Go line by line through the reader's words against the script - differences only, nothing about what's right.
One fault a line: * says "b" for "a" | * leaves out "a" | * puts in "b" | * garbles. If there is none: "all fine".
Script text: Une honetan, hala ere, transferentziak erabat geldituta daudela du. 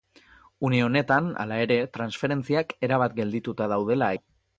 all fine